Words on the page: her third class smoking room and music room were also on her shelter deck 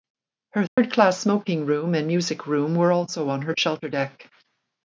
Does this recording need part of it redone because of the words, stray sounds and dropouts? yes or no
yes